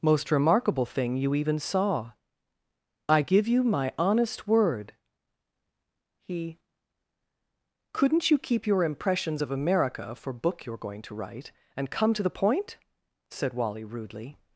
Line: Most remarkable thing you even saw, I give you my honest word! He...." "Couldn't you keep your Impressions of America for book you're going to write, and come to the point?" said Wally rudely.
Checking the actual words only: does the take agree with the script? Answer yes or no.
yes